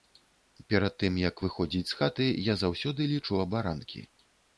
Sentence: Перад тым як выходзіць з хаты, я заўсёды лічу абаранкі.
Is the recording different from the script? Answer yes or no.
no